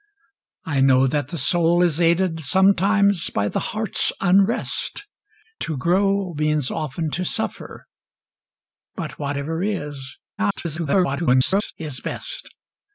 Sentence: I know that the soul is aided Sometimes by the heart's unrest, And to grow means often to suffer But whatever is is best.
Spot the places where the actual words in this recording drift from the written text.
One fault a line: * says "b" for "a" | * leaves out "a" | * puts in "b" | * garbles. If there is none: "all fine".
* leaves out "And"
* garbles